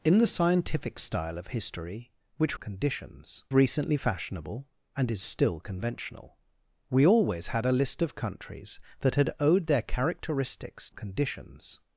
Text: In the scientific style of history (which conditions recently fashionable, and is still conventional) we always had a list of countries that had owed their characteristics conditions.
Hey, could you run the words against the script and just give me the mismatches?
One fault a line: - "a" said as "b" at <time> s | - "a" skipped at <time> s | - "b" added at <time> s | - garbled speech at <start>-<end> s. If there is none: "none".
none